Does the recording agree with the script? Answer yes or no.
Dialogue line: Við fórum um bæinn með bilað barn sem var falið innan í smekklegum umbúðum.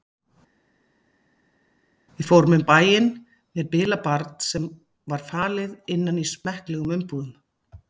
yes